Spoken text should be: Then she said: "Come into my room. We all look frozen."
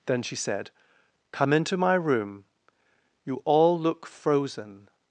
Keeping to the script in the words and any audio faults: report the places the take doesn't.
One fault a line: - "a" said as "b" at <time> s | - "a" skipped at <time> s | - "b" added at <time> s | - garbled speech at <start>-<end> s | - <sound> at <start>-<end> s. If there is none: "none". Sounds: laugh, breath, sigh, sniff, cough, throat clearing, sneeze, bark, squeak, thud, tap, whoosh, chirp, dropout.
- "We" said as "You" at 3.2 s